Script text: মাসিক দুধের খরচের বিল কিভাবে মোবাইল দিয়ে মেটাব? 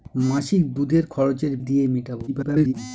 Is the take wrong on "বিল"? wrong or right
wrong